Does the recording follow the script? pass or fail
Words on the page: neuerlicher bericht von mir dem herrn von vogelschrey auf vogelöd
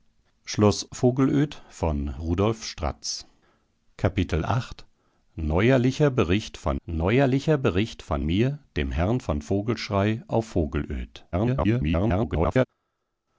fail